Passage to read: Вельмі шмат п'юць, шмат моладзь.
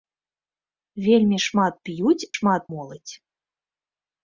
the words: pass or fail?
pass